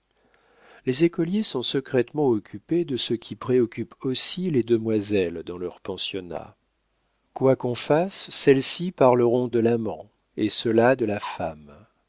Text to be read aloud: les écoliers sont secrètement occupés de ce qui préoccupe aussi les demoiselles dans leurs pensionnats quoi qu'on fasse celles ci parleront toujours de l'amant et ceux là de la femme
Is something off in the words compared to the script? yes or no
yes